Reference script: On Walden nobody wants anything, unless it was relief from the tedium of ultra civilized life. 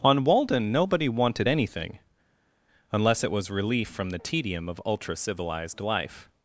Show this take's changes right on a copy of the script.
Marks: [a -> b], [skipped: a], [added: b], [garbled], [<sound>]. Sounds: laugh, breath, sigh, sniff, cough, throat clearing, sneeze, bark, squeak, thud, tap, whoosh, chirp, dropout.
On Walden nobody [wants -> wanted] anything, unless it was relief from the tedium of ultra civilized life.